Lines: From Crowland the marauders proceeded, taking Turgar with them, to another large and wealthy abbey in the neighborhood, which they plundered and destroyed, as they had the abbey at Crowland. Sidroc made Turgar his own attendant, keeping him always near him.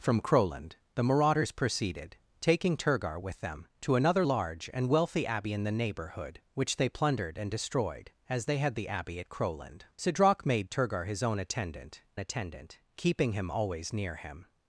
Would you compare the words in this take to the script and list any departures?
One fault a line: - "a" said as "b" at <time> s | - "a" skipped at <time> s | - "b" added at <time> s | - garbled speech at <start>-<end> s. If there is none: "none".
- "attendant" added at 12.2 s